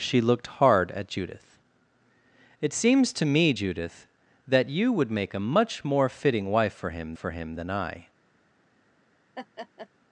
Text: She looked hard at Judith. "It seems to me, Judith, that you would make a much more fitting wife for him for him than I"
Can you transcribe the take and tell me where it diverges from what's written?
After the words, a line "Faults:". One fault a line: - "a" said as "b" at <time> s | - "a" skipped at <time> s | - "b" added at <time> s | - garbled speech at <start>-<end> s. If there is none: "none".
She looked hard at Judith. "It seems to me, Judith, that you would make a much more fitting wife for him for him than I"
Faults:
none